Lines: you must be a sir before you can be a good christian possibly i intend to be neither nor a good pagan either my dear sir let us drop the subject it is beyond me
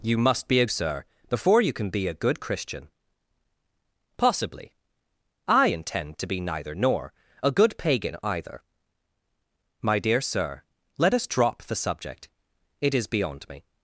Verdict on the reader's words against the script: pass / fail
pass